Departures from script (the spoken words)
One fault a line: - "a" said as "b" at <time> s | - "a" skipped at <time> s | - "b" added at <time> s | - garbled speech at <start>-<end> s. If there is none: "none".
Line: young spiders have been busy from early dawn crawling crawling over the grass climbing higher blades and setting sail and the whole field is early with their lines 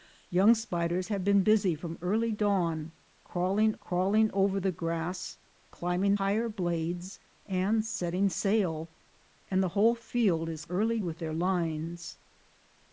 none